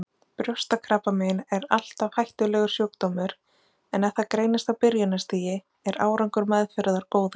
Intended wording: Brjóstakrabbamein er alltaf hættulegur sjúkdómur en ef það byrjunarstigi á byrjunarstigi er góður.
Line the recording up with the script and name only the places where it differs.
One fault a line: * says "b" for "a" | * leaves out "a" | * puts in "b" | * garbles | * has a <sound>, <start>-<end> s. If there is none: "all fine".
* says "greinist" for "byrjunarstigi"
* puts in "árangur meðferðar"